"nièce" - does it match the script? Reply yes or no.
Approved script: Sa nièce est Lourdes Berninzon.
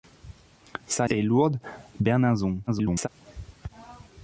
no